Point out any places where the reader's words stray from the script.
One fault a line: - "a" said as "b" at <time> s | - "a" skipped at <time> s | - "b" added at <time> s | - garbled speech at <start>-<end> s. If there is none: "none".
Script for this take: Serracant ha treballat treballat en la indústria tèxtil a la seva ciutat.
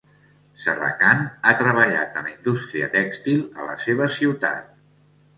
- "treballat" skipped at 2.2 s